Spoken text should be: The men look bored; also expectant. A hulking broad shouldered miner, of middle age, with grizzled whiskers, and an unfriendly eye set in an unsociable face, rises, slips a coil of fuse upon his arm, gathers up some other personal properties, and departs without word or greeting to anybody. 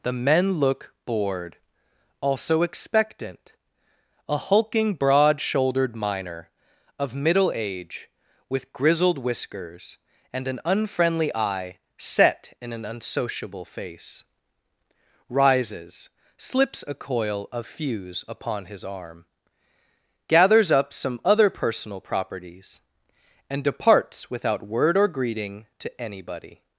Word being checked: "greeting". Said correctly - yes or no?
yes